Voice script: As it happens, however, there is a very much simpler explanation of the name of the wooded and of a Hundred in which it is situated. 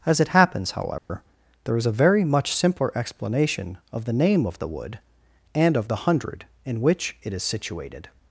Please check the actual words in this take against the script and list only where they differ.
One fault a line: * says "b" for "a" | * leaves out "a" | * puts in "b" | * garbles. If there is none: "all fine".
* says "wood" for "wooded"
* says "the" for "a"